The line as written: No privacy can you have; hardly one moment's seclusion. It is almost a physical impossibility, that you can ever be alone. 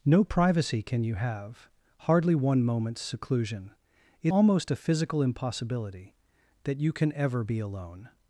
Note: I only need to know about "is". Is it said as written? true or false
false